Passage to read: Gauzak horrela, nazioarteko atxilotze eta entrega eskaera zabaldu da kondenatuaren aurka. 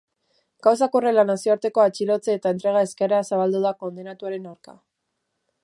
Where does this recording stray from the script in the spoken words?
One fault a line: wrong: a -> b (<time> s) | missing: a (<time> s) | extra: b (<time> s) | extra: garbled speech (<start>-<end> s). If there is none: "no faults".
no faults